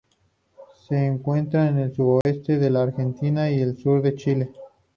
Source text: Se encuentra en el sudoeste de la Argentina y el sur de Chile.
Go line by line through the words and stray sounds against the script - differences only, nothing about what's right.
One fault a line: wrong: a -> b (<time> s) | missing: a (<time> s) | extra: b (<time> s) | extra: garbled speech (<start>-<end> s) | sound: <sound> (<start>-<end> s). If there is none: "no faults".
sound: dropout (2.2-2.3 s)